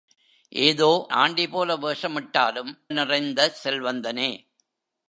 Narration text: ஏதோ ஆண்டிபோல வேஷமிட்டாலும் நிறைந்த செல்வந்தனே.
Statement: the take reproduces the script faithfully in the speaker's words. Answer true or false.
true